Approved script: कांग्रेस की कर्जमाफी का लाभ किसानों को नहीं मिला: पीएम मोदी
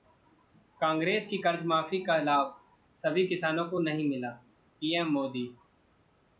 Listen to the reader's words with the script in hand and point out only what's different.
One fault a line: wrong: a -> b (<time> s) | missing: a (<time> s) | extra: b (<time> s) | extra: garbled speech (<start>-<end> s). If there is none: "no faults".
extra: सभी (3.0 s)